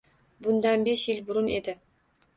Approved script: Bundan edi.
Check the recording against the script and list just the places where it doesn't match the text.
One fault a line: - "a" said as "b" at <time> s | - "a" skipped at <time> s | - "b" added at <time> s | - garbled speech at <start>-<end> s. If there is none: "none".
- "besh yil burun" added at 0.9 s